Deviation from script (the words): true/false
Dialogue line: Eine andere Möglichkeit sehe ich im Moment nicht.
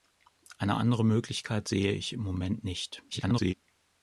true